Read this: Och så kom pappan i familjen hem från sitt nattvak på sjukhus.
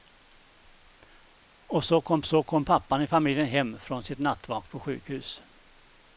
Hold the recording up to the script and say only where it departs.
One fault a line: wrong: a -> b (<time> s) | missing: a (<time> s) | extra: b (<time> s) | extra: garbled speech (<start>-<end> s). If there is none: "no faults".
extra: så kom (2.2 s)